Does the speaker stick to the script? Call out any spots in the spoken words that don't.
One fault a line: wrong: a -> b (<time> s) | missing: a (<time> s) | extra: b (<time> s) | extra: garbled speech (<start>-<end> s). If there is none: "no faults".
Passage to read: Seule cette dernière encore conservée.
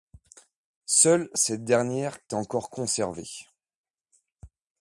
no faults